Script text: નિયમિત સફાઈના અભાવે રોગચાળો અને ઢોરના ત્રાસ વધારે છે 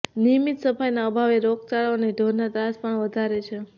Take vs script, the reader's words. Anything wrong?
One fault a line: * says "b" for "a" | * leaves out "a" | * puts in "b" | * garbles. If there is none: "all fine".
* puts in "પણ"